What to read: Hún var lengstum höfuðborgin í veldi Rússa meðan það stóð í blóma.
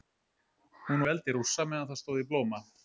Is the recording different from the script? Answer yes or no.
yes